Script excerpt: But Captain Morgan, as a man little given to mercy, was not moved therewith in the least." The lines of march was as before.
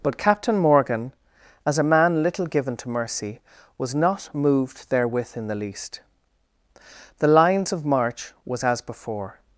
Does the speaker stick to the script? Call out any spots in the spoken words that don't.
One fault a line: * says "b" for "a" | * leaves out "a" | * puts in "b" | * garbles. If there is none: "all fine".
all fine